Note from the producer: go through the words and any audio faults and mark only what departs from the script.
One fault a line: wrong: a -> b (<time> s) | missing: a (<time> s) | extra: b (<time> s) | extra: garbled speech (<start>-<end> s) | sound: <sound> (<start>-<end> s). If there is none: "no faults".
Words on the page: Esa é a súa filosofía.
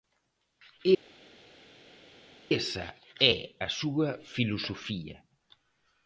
no faults